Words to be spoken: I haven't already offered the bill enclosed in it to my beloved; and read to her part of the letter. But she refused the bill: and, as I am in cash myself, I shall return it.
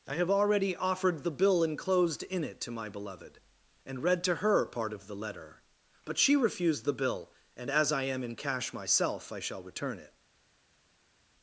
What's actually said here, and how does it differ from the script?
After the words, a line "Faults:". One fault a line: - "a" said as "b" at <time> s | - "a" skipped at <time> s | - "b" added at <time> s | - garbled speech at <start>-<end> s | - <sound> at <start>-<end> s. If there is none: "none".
I have already offered the bill enclosed in it to my beloved; and read to her part of the letter. But she refused the bill: and, as I am in cash myself, I shall return it.
Faults:
- "haven't" said as "have" at 0.1 s